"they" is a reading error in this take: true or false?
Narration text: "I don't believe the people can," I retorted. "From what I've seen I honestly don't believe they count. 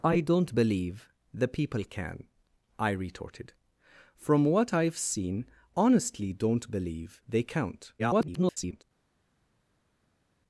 false